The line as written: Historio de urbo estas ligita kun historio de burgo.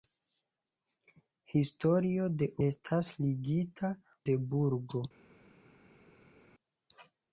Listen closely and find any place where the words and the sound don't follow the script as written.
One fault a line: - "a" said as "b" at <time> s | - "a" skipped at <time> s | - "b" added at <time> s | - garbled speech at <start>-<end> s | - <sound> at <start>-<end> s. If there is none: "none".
- "urbo" skipped at 2.5 s
- "kun historio" skipped at 3.9 s